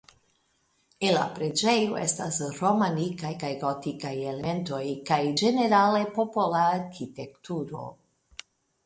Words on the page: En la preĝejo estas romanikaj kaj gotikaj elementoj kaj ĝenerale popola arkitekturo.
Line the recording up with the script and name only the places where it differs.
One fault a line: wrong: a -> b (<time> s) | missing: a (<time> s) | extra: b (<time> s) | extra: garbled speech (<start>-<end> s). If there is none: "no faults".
no faults